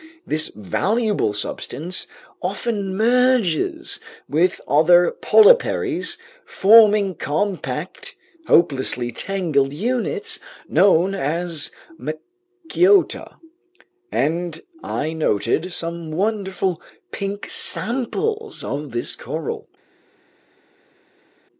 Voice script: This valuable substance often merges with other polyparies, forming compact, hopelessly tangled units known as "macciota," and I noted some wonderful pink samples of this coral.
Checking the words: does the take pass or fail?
pass